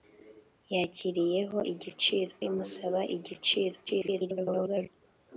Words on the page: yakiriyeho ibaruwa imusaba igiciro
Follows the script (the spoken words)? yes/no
no